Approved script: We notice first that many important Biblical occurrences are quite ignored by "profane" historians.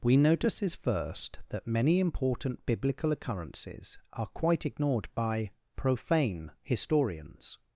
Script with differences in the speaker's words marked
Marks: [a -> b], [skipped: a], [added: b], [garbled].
We [notice -> notices] first that many important Biblical occurrences are quite ignored by "profane" historians.